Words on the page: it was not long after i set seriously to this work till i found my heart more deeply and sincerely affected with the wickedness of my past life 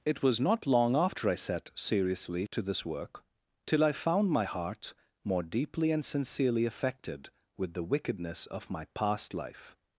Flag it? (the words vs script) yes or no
no